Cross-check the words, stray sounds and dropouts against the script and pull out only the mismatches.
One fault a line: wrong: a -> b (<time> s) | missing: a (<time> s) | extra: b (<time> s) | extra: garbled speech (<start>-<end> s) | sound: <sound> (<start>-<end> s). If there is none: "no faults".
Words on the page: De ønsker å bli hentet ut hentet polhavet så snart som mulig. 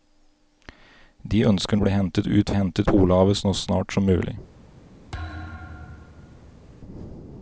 sound: thud (5.1-6.6 s)